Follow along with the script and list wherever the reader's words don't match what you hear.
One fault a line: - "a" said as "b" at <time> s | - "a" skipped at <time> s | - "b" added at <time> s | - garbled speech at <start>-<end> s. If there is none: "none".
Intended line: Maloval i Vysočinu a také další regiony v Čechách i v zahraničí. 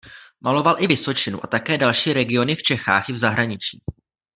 none